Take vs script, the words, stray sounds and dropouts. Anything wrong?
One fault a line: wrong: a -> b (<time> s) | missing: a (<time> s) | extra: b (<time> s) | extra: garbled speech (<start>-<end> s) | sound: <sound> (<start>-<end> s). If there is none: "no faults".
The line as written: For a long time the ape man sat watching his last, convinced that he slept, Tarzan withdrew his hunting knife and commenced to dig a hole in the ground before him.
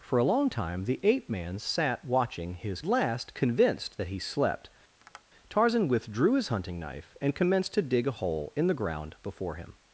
sound: tap (5.0-5.2 s)